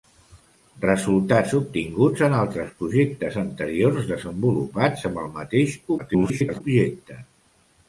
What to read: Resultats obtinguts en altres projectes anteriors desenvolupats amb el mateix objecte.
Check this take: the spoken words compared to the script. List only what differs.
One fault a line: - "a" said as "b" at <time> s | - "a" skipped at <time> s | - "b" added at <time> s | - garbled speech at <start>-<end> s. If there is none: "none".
- garbled speech at 6.0-6.6 s